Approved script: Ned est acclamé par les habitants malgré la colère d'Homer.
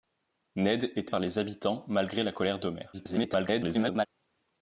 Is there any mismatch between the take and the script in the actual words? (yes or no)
yes